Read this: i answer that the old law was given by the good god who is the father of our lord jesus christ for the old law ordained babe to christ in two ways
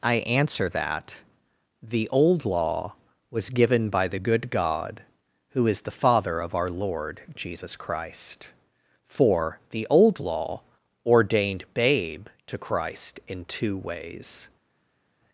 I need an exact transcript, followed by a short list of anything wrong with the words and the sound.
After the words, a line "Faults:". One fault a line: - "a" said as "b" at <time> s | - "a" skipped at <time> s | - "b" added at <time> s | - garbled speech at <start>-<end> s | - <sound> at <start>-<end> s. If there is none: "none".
i answer that the old law was given by the good god who is the father of our lord jesus christ for the old law ordained babe to christ in two ways
Faults:
none